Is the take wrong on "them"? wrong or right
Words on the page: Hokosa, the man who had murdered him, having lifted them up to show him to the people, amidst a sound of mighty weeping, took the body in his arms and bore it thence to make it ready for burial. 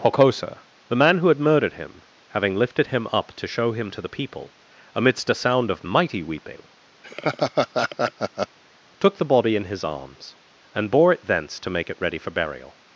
wrong